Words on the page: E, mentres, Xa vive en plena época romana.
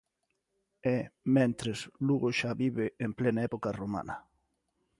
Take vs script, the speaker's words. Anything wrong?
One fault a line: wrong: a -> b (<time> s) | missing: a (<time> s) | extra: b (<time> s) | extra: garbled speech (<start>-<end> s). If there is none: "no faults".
extra: Lugo (2.1 s)